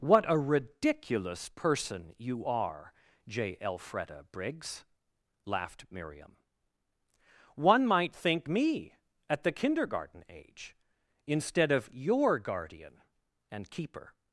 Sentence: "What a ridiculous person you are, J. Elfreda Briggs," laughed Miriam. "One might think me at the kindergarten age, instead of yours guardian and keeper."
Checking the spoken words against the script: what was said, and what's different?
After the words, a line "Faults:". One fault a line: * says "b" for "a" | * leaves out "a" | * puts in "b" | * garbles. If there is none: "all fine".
"What a ridiculous person you are, J. Elfreda Briggs," laughed Miriam. "One might think me at the kindergarten age, instead of your guardian and keeper."
Faults:
* says "your" for "yours"